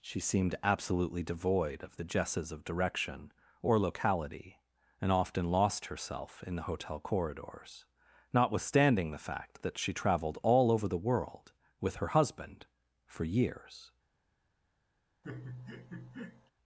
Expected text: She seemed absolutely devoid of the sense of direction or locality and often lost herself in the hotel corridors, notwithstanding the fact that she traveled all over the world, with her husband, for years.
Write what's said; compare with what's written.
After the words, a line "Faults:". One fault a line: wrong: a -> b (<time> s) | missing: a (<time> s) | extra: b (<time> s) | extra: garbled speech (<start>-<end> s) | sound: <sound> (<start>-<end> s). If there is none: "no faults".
She seemed absolutely devoid of the jesses of direction or locality and often lost herself in the hotel corridors, notwithstanding the fact that she traveled all over the world, with her husband, for years.
Faults:
wrong: sense -> jesses (2.0 s)
sound: laugh (15.2-16.5 s)